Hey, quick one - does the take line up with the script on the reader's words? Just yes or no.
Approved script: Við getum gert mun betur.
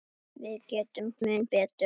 no